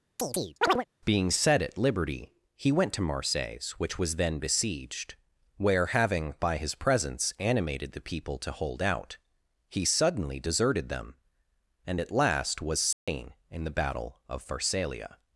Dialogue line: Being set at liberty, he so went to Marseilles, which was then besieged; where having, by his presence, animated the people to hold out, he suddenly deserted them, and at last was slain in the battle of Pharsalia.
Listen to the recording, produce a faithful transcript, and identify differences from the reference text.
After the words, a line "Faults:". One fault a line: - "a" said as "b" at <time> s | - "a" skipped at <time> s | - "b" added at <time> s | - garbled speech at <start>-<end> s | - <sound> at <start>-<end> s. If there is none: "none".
Being set at liberty, he went to Marseilles, which was then besieged; where having, by his presence, animated the people to hold out, he suddenly deserted them, and at last was slain in the battle of Pharsalia.
Faults:
- chirp at 0.2-0.9 s
- "so" skipped at 2.7 s
- dropout at 12.9-13.1 s